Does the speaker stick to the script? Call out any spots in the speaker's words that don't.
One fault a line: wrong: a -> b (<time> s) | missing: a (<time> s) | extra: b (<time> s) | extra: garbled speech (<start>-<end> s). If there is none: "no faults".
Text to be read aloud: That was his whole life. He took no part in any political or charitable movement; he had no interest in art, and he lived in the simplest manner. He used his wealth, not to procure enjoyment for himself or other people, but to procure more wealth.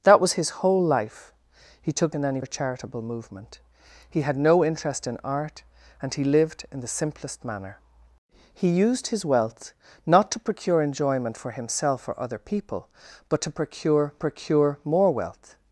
missing: no part (2.1 s)
missing: political (2.4 s)
extra: procure (14.2 s)